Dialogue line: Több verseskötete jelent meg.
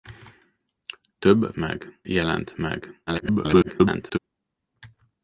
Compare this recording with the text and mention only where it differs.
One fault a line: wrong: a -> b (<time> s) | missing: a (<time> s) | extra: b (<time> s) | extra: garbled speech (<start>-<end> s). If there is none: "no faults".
wrong: verseskötete -> meg (1.6 s)
extra: garbled speech (3.1-4.2 s)